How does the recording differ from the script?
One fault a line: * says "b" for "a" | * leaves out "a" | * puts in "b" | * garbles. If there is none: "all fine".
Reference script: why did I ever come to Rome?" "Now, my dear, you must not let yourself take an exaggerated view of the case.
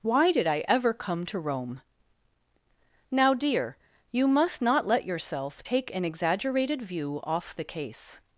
* leaves out "my"
* says "off" for "of"